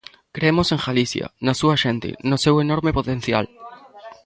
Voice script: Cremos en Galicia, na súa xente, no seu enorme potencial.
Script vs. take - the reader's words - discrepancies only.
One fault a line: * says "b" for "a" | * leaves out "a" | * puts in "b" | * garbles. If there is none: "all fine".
all fine